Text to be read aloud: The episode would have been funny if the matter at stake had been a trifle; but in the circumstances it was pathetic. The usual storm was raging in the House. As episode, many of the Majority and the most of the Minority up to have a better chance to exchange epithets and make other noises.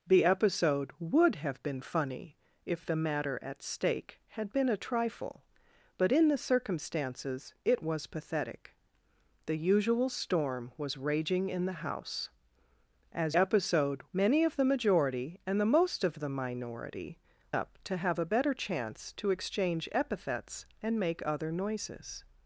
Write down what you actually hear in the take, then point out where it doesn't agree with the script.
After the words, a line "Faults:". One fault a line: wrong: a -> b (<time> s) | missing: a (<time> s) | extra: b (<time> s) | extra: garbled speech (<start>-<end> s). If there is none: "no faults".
The episode would have been funny if the matter at stake had been a trifle; but in the circumstances it was pathetic. The usual storm was raging in the House. As episode, many of the Majority and the most of the Minority up to have a better chance to exchange epithets and make other noises.
Faults:
no faults